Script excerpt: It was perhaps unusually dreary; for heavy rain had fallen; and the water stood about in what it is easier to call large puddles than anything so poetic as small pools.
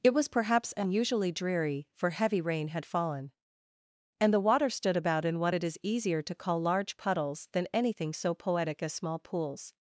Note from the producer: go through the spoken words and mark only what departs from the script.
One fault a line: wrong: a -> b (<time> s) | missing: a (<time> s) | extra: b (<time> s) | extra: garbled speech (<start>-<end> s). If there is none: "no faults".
no faults